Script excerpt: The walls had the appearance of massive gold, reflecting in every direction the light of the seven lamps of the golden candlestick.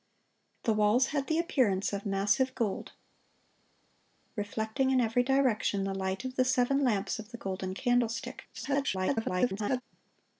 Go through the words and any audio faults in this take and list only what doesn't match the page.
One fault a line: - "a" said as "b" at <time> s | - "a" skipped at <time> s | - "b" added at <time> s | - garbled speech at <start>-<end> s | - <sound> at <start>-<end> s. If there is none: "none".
- garbled speech at 8.5-9.8 s